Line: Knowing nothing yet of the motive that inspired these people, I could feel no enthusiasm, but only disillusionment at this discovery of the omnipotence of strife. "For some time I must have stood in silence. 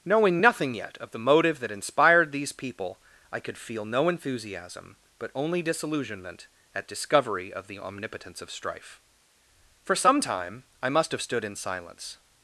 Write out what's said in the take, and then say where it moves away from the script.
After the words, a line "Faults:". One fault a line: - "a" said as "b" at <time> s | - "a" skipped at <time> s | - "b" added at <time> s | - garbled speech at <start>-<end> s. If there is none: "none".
Knowing nothing yet of the motive that inspired these people, I could feel no enthusiasm, but only disillusionment at discovery of the omnipotence of strife. "For some time I must have stood in silence.
Faults:
- "this" skipped at 6.9 s